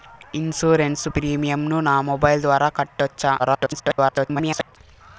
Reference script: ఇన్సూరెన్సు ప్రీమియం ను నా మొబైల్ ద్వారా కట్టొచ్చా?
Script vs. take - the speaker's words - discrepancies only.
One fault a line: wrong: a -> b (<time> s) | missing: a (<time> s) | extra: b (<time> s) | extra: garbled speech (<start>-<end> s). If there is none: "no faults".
extra: garbled speech (3.4-4.8 s)